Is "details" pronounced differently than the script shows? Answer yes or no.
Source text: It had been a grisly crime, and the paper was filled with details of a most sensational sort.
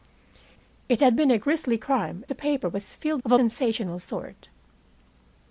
yes